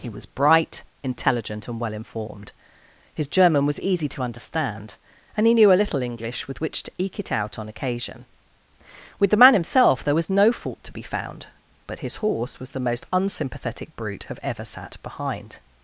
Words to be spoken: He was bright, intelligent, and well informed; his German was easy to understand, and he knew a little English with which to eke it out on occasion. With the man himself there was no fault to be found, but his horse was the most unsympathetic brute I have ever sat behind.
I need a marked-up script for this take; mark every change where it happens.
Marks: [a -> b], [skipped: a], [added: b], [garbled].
He was bright, intelligent, and well informed; his German was easy to understand, and he knew a little English with which to eke it out on occasion. With the man himself there was no fault to be found, but his horse was the most unsympathetic brute [skipped: I] have ever sat behind.